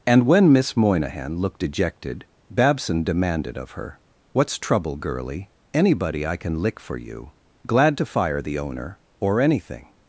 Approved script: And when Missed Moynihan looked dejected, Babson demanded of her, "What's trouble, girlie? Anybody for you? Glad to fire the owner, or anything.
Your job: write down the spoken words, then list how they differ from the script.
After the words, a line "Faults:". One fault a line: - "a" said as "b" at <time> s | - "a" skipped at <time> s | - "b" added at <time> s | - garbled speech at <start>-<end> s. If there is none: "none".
And when Miss Moynihan looked dejected, Babson demanded of her, "What's trouble, girlie? Anybody I can lick for you? Glad to fire the owner, or anything.
Faults:
- "Missed" said as "Miss" at 0.5 s
- "I can lick" added at 6.3 s